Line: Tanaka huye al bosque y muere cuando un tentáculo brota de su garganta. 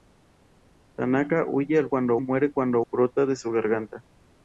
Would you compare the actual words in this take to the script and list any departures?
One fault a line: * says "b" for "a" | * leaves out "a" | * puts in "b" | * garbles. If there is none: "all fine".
* says "cuando" for "bosque"
* leaves out "un tentáculo"